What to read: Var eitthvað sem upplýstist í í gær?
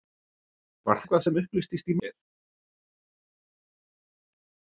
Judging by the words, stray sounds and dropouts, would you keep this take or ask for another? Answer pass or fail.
pass